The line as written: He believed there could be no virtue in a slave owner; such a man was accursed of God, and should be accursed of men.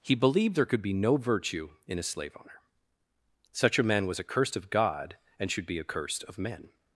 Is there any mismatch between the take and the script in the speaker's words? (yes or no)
no